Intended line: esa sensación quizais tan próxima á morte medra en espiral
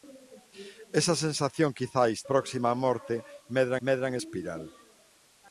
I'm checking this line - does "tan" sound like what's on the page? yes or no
no